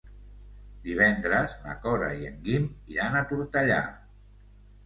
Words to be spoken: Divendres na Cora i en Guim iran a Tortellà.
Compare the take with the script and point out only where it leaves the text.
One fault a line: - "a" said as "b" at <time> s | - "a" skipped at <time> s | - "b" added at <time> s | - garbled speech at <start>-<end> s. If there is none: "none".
none